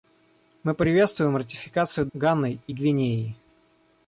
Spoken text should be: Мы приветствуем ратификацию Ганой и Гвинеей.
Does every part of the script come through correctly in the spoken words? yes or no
yes